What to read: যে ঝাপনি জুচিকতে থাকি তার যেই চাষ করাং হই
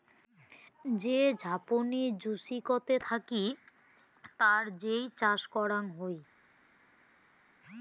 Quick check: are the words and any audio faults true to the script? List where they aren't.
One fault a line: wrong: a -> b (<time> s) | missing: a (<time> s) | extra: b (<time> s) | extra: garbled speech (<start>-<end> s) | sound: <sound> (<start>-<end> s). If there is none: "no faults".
no faults